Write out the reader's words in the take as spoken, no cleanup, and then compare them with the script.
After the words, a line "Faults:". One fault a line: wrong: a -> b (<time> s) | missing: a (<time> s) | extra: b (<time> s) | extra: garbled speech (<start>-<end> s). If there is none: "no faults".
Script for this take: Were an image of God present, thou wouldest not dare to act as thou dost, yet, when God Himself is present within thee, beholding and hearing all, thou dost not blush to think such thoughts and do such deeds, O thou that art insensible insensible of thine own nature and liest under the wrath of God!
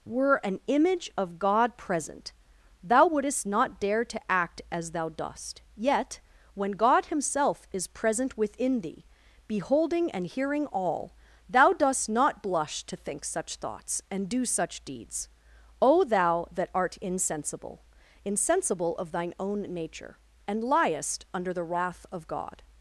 Were an image of God present, thou wouldest not dare to act as thou dost, yet, when God Himself is present within thee, beholding and hearing all, thou dost not blush to think such thoughts and do such deeds, O thou that art insensible insensible of thine own nature and liest under the wrath of God!
Faults:
no faults